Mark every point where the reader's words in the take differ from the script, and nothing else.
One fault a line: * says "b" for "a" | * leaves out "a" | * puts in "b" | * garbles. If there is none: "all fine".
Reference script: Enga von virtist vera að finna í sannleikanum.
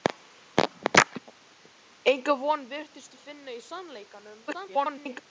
* leaves out "vera"
* garbles